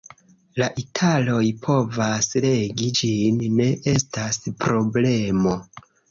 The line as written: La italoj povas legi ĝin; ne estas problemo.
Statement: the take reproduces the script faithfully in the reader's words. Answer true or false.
true